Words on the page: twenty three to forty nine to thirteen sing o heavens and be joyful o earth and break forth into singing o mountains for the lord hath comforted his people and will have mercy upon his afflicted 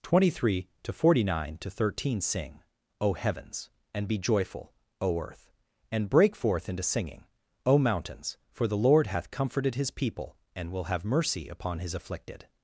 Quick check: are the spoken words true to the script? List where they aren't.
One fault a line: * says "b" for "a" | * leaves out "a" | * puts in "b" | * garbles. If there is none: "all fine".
all fine